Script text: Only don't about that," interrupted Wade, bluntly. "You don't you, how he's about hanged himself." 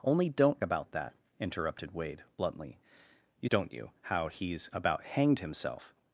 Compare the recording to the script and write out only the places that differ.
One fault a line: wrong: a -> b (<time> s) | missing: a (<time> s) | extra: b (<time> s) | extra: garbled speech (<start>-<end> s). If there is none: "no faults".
no faults